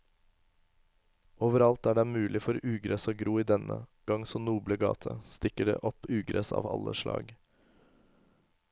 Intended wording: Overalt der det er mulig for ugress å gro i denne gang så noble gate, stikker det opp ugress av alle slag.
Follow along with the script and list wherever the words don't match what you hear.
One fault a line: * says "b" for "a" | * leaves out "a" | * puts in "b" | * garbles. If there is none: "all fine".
all fine